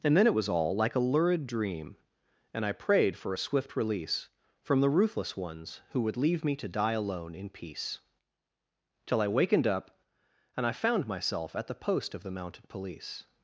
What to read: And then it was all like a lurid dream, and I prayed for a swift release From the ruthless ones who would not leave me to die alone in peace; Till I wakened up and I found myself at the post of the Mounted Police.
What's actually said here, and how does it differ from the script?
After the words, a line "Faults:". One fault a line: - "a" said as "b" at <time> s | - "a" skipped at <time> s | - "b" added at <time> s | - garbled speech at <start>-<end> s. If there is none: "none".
And then it was all like a lurid dream, and I prayed for a swift release From the ruthless ones who would leave me to die alone in peace; Till I wakened up and I found myself at the post of the Mounted Police.
Faults:
- "not" skipped at 6.2 s